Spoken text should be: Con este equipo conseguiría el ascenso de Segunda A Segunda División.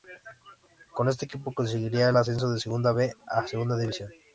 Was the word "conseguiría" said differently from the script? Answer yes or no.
no